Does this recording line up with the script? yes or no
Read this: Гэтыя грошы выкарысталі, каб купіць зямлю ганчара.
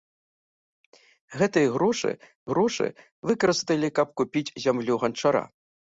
no